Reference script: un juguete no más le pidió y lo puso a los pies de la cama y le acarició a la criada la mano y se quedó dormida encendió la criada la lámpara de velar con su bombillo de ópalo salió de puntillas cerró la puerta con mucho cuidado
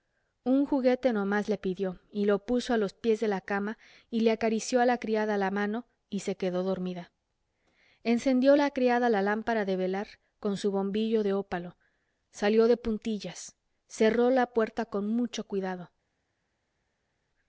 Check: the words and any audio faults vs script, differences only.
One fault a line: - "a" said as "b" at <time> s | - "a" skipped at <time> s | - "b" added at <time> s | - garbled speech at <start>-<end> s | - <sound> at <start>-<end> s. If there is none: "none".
none